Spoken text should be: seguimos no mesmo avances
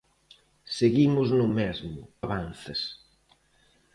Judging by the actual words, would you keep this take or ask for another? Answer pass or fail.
pass